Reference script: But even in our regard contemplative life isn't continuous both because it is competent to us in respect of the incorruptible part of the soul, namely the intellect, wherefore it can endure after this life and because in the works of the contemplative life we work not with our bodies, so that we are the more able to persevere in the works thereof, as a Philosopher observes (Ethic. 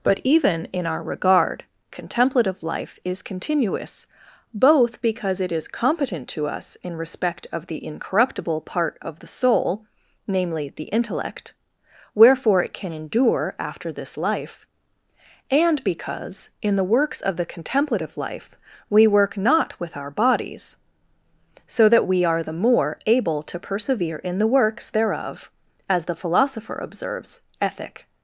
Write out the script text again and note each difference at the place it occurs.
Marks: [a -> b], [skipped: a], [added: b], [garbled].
But even in our regard contemplative life [isn't -> is] continuous both because it is competent to us in respect of the incorruptible part of the soul, namely the intellect, wherefore it can endure after this life and because in the works of the contemplative life we work not with our bodies, so that we are the more able to persevere in the works thereof, as [a -> the] Philosopher observes (Ethic.